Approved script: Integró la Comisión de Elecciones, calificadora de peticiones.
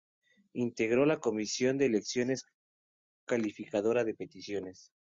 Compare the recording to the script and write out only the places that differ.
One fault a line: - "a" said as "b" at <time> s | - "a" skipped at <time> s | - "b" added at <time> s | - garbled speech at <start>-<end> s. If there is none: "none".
none